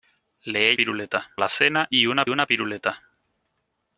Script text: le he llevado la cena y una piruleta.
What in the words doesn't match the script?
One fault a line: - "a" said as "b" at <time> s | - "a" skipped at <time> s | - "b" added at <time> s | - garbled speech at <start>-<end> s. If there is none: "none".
- "llevado" said as "piruleta" at 0.7 s
- "una" added at 2.3 s